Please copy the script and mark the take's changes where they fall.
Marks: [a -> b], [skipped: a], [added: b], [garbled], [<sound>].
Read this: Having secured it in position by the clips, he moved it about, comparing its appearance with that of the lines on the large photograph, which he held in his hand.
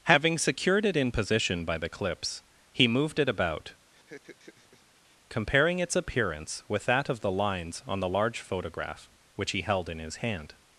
Having secured it in position by the clips, he moved it about, [laugh] comparing its appearance with that of the lines on the large photograph, which he held in his hand.